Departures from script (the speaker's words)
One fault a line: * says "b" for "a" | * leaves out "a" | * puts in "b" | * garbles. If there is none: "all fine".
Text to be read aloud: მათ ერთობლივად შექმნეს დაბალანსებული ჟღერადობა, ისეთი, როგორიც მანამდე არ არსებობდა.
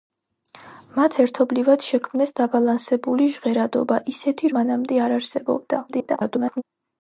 * leaves out "როგორიც"
* garbles